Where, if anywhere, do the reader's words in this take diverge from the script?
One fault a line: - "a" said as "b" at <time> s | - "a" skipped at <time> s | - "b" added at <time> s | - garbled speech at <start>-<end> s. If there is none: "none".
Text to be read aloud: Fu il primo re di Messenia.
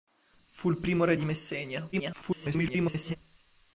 - garbled speech at 1.9-3.2 s